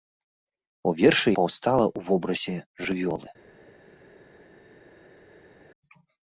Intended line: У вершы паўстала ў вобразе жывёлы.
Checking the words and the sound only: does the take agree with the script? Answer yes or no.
yes